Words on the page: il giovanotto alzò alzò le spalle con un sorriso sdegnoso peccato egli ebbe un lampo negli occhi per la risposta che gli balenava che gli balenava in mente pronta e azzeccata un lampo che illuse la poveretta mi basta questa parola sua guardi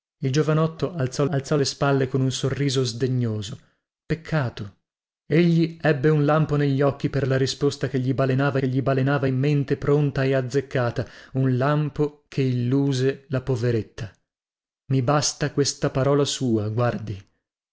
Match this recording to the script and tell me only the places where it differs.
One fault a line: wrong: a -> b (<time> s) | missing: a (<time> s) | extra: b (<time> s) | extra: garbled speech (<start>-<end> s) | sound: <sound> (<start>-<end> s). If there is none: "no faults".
no faults